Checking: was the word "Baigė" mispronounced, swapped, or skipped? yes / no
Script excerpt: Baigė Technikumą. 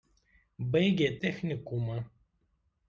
no